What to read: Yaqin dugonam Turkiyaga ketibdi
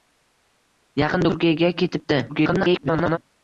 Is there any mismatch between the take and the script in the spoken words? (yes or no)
yes